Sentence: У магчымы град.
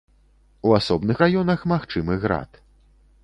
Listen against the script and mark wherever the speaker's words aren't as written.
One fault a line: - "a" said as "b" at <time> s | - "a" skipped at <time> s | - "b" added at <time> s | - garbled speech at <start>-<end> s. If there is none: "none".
- "асобных раёнах" added at 0.8 s